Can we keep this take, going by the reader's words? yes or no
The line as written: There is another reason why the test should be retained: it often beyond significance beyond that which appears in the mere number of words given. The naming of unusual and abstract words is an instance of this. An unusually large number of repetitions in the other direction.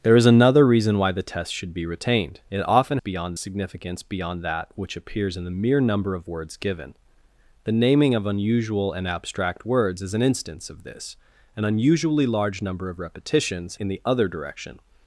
yes